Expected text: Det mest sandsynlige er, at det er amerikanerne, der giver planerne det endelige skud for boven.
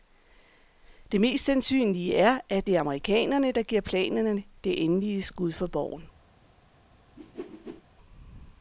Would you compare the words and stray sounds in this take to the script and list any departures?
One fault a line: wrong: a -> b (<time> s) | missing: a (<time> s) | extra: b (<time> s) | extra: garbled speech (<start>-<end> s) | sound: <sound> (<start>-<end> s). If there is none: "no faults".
sound: whoosh (7.2-7.8 s)